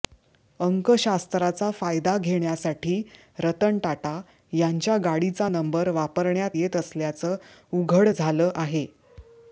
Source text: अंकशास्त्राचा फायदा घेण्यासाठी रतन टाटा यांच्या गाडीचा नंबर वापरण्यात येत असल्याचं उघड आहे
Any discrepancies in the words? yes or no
yes